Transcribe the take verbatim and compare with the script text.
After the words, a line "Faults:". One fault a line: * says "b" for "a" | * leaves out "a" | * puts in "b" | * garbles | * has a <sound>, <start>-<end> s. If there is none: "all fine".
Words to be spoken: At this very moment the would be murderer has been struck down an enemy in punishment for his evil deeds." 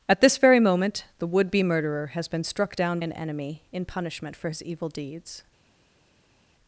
At this very moment the would be murderer has been struck down an enemy in punishment for his evil deeds."
Faults:
all fine